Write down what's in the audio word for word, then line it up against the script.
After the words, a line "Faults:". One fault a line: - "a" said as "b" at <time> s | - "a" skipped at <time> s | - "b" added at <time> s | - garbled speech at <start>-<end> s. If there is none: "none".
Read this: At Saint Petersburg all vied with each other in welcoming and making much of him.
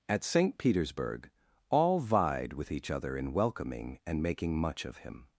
At Saint Petersburg all vied with each other in welcoming and making much of him.
Faults:
none